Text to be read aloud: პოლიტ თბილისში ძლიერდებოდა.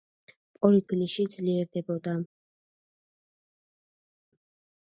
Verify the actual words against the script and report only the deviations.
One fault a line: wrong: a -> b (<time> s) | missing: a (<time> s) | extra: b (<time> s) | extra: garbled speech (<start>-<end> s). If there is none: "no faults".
no faults